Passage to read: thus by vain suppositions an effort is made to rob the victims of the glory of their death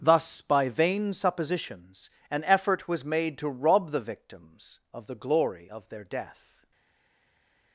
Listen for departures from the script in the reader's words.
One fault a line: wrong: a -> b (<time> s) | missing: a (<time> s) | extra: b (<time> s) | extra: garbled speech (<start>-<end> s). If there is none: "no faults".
wrong: is -> was (2.9 s)